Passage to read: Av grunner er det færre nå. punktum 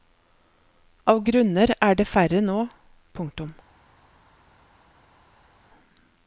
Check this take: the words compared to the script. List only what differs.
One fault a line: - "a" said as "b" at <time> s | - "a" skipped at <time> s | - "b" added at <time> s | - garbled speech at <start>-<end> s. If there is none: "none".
none